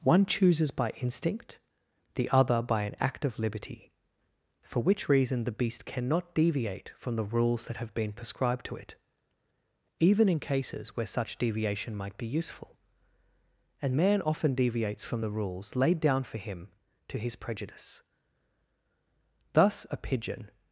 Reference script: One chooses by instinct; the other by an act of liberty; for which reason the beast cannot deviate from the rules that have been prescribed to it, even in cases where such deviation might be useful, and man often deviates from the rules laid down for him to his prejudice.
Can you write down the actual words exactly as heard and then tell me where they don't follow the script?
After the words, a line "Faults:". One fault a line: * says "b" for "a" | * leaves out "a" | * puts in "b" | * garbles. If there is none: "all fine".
One chooses by instinct; the other by an act of liberty; for which reason the beast cannot deviate from the rules that have been prescribed to it, even in cases where such deviation might be useful, and man often deviates from the rules laid down for him to his prejudice. Thus a pigeon
Faults:
* puts in "Thus a pigeon"